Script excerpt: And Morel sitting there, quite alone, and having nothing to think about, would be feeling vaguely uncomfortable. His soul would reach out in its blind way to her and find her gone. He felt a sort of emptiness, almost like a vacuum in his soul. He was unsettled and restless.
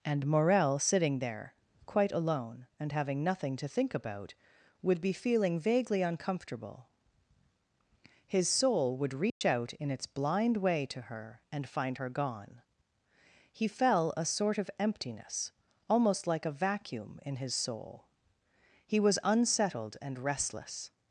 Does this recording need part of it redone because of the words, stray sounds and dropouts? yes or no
yes